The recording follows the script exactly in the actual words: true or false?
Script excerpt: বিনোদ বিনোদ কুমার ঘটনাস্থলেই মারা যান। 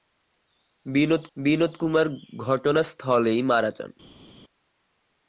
true